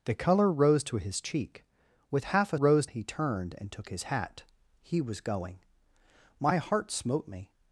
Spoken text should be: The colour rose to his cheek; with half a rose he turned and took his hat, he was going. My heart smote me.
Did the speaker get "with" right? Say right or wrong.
right